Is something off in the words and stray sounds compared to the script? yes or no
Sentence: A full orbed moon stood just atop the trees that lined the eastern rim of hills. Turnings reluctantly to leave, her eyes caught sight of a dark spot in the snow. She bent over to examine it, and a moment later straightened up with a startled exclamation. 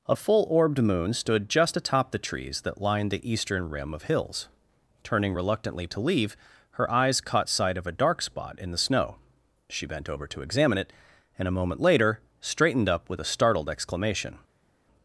yes